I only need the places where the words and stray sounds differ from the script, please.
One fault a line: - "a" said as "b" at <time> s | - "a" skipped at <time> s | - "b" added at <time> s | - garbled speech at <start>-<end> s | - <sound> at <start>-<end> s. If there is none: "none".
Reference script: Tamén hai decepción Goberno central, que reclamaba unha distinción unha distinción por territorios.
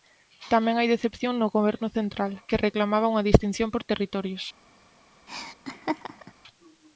- "no" added at 1.4 s
- "unha distinción" skipped at 3.7 s
- laugh at 5.3-6.3 s